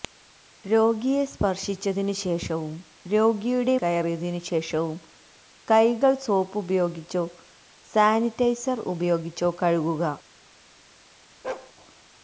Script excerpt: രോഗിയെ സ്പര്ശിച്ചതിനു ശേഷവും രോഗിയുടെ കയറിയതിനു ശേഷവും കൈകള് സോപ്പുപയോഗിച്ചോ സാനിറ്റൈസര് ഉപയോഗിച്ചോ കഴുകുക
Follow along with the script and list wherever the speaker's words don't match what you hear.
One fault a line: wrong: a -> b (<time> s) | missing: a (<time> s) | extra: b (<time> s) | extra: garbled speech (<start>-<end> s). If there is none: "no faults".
no faults